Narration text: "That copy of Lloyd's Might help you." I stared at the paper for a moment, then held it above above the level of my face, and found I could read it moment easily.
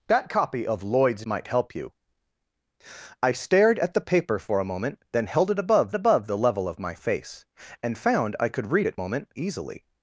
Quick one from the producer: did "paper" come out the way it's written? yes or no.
yes